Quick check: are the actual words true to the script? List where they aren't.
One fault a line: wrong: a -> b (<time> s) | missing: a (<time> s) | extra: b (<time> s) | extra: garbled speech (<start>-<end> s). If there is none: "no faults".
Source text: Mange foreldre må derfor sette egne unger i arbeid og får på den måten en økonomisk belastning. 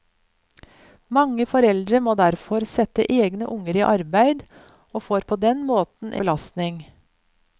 missing: en økonomisk (6.2 s)